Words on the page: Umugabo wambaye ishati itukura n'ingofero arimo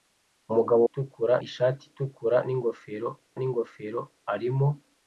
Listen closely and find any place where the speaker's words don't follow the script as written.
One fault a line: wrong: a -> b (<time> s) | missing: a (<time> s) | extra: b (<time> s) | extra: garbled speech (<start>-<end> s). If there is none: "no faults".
wrong: wambaye -> itukura (0.9 s)
extra: n'ingofero (3.4 s)